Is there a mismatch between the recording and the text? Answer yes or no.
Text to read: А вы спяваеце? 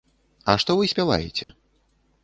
yes